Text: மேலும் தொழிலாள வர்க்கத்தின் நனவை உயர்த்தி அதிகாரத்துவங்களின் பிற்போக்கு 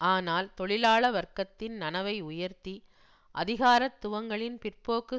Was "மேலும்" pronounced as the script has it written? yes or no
no